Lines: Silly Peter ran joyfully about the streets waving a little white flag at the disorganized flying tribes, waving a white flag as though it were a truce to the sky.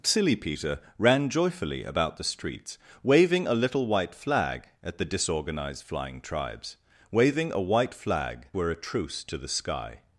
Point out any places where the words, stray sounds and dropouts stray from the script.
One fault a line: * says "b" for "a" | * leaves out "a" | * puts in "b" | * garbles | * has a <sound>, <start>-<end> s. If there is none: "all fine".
* leaves out "as though it"